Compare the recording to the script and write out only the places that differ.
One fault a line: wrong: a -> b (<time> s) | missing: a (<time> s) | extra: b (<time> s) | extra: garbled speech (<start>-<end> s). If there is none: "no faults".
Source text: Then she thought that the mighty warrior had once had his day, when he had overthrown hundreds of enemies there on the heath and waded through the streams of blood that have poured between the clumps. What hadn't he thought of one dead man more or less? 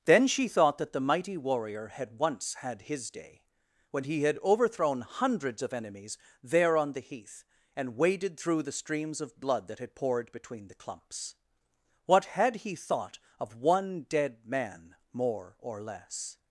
wrong: have -> had (9.8 s)
wrong: hadn't -> had (12.2 s)